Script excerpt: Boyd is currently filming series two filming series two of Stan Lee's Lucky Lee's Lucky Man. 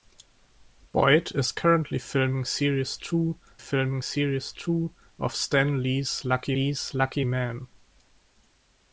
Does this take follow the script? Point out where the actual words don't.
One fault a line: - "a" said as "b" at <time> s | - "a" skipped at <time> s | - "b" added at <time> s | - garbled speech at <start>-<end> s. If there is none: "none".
none